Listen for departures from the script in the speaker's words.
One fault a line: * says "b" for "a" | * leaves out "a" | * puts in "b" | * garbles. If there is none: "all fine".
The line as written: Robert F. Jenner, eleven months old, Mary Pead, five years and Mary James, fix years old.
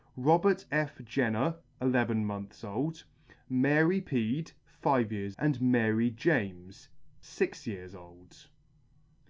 all fine